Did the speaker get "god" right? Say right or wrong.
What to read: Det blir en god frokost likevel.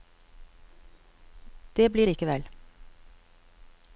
wrong